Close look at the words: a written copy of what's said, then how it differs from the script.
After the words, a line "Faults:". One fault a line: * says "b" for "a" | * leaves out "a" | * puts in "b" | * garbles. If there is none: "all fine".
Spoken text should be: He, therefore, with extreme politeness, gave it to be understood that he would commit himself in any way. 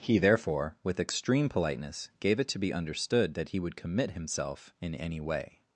He, therefore, with extreme politeness, gave it to be understood that he would commit himself in any way.
Faults:
all fine